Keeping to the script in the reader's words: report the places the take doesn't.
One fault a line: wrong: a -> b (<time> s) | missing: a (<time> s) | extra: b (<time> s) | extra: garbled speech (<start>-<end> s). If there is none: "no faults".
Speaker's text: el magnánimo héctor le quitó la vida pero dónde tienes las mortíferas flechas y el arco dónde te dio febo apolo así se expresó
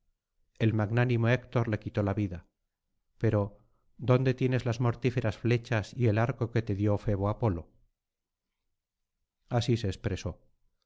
wrong: dónde -> que (6.5 s)